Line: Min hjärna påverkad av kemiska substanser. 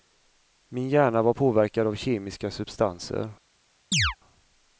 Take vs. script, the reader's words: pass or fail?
fail